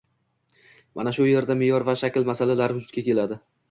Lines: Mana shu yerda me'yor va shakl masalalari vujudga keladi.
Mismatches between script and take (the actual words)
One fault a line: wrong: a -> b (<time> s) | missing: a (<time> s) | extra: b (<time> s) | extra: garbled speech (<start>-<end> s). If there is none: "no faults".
no faults